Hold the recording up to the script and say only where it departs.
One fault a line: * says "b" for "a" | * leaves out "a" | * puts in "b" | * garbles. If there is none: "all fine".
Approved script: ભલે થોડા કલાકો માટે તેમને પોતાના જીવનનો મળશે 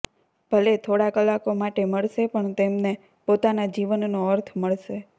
* puts in "મળશે પણ"
* puts in "અર્થ"